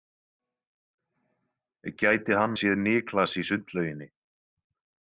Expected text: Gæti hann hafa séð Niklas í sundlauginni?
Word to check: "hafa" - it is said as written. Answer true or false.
false